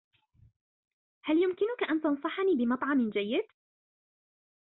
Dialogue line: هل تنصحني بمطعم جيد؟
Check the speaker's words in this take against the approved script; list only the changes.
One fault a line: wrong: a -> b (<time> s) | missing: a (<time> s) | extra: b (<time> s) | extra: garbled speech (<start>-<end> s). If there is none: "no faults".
extra: يمكنك أن (1.4 s)